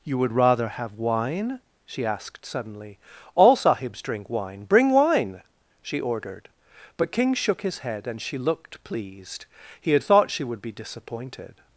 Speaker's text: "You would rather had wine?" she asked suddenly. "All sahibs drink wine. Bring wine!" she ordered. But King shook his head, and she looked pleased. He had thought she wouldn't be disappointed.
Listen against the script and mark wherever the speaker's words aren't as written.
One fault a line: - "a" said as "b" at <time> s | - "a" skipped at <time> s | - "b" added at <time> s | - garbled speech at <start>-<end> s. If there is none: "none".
- "had" said as "have" at 0.7 s
- "wouldn't" said as "would" at 10.4 s